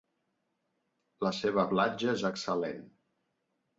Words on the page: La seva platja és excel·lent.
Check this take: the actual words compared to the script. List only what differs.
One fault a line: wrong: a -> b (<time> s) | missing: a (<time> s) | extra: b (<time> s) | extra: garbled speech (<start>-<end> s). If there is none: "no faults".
no faults